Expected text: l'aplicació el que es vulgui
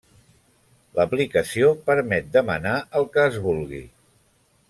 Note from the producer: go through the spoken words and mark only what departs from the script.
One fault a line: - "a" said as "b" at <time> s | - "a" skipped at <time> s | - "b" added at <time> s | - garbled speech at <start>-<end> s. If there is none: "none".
- "permet demanar" added at 1.9 s